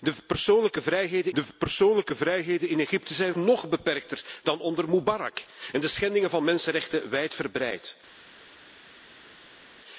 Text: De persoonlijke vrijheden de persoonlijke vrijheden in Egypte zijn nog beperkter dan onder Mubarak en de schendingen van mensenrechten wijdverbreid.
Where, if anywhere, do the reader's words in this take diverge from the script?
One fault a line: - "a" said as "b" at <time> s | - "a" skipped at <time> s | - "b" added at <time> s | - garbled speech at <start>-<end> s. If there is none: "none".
none